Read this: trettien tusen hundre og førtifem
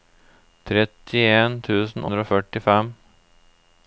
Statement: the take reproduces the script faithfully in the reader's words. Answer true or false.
true